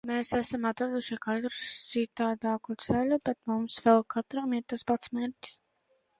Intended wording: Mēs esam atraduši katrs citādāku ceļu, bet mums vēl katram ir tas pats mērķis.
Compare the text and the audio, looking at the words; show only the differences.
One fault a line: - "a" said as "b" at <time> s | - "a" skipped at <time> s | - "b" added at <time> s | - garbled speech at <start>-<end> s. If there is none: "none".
none